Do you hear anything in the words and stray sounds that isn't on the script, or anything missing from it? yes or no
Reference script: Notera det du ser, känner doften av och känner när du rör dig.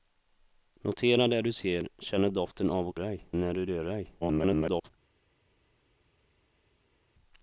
yes